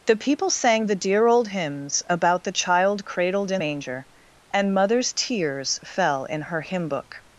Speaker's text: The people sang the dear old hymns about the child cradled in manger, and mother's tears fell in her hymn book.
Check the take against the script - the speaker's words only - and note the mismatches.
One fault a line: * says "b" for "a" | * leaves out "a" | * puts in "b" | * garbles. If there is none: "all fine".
all fine